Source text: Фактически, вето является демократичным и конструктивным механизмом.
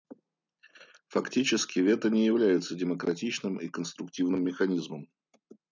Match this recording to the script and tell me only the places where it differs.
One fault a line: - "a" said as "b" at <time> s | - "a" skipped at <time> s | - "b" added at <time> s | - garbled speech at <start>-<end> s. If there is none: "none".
- "не" added at 2.1 s